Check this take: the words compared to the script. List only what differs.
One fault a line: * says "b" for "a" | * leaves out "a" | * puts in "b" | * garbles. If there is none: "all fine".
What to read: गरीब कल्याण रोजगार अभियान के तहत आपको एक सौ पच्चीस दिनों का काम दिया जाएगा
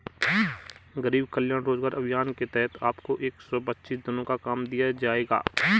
all fine